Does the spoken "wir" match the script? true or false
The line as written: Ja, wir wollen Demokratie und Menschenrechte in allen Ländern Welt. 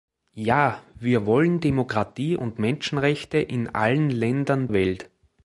true